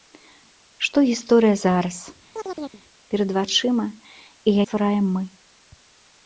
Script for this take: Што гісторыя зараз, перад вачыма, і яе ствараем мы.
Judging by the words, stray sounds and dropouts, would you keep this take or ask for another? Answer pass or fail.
fail